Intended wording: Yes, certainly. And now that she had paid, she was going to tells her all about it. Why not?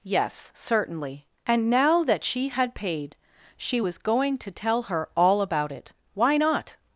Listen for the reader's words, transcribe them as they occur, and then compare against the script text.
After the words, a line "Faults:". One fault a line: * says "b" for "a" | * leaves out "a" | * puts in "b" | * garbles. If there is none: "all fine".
Yes, certainly. And now that she had paid, she was going to tell her all about it. Why not?
Faults:
* says "tell" for "tells"